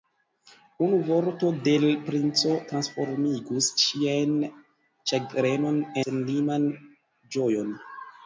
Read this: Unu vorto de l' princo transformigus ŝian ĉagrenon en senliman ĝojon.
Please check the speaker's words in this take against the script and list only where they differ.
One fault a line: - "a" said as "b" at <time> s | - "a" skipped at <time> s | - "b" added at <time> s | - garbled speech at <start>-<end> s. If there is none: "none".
- "en" skipped at 5.8 s